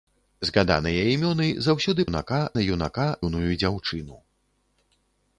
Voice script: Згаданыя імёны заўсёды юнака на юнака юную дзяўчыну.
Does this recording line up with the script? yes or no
yes